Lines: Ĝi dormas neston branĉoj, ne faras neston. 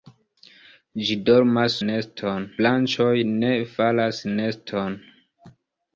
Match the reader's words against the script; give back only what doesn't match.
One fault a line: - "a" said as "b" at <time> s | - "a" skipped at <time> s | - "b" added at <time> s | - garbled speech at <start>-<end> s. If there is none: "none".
none